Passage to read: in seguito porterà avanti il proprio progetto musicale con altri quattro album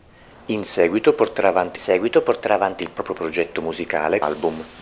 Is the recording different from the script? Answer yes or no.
yes